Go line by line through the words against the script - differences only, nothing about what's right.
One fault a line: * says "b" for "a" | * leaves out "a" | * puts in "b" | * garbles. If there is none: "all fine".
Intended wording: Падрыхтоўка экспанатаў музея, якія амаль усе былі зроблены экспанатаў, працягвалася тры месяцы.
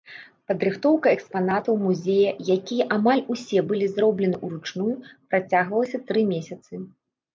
* says "ўручную" for "экспанатаў"